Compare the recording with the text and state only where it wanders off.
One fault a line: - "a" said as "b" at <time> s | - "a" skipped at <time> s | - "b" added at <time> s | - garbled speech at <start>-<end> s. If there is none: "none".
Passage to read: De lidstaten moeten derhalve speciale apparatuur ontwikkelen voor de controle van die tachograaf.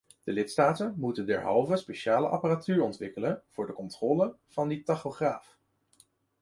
none